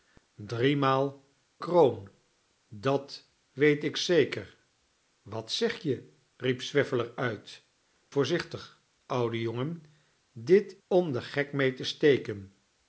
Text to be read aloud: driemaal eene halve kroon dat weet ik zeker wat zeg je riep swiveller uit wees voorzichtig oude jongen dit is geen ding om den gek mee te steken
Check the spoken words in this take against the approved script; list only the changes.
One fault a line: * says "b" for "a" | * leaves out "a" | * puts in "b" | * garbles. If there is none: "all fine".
* leaves out "eene halve"
* leaves out "wees"
* leaves out "is geen ding"